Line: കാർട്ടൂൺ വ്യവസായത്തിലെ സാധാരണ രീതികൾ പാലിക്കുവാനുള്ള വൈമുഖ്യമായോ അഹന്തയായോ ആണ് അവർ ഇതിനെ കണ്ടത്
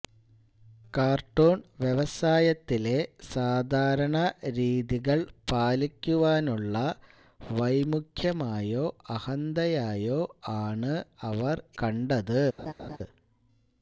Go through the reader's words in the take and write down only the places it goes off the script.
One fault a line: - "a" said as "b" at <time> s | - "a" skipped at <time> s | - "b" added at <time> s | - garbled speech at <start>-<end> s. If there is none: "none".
- "ഇതിനെ" skipped at 11.6 s